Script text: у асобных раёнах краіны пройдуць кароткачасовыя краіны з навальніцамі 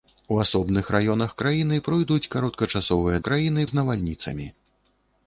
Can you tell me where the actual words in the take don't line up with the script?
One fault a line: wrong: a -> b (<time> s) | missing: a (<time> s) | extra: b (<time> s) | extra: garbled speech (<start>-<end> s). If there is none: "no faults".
no faults